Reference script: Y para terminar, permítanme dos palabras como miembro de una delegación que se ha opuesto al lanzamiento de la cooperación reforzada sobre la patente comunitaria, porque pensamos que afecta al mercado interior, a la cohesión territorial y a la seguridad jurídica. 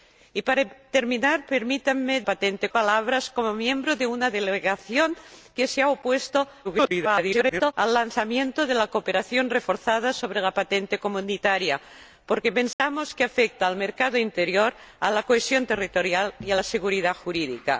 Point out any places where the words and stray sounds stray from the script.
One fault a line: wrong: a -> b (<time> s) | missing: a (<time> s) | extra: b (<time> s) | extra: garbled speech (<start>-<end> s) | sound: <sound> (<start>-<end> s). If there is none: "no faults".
wrong: dos -> patente (2.2 s)
extra: garbled speech (6.6-7.7 s)
sound: dropout (12.7-12.8 s)